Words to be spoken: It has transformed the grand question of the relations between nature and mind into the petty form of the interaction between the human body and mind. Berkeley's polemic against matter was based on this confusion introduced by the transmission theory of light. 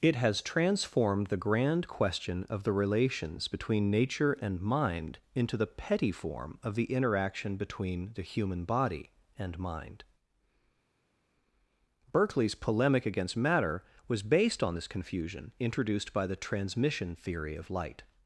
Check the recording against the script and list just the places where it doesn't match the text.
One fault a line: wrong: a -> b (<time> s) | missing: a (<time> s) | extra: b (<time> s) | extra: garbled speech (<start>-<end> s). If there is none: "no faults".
no faults